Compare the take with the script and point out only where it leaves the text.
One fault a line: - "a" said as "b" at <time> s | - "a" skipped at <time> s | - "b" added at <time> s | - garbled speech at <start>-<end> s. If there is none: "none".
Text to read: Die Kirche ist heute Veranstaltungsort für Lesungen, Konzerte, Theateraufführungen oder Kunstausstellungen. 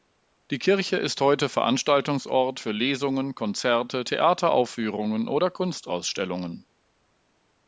none